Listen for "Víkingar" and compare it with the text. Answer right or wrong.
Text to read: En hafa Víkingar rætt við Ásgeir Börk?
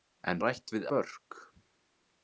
wrong